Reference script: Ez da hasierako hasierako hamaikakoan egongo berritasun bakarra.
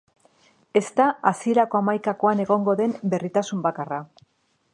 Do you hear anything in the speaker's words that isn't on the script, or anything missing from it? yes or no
yes